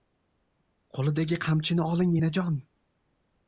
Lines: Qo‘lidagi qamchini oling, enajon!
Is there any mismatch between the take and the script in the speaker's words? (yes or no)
no